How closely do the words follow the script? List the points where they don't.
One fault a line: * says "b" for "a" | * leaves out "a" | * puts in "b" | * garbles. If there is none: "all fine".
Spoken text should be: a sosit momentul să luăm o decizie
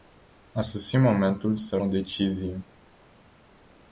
* leaves out "luăm"